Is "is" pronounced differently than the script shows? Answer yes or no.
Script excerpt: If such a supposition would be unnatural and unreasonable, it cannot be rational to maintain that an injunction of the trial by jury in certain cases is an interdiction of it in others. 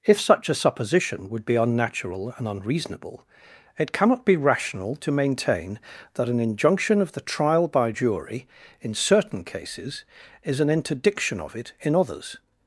no